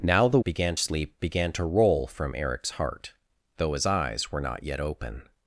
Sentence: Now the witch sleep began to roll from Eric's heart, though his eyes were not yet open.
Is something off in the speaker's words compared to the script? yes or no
yes